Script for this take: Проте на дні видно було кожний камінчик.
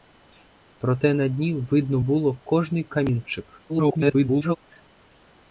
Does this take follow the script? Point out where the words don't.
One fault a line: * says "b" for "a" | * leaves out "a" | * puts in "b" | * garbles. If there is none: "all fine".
* garbles